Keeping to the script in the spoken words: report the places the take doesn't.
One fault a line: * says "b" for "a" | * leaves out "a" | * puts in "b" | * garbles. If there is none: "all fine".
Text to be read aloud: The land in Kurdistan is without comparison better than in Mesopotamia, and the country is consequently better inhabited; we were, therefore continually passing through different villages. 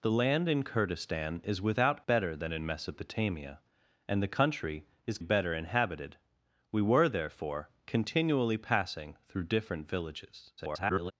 * leaves out "comparison"
* leaves out "consequently"
* garbles